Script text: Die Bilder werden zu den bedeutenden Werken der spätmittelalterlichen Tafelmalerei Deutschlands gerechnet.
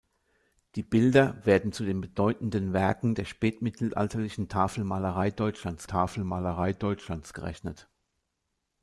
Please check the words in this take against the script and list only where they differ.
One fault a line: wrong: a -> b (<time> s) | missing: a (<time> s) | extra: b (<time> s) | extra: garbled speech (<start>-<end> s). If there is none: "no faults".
extra: Tafelmalerei Deutschlands (5.9 s)